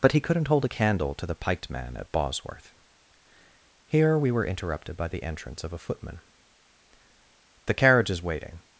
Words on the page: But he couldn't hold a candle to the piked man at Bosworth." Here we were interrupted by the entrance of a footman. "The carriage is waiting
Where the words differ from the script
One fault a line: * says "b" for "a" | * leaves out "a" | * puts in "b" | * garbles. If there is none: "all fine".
all fine